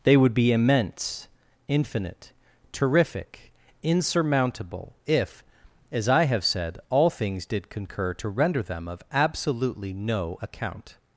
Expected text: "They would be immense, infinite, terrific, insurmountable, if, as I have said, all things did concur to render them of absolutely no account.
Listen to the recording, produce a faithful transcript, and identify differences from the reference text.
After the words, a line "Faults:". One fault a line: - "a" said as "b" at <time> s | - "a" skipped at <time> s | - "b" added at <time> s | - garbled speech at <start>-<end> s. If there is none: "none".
"They would be immense, infinite, terrific, insurmountable, if, as I have said, all things did concur to render them of absolutely no account.
Faults:
none